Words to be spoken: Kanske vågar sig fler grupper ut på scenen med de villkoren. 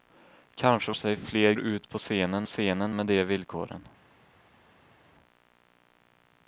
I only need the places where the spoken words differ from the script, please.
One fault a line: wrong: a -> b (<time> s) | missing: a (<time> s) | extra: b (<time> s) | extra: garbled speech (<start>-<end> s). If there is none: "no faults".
missing: vågar (0.9 s)
missing: grupper (1.5 s)
extra: scenen (2.4 s)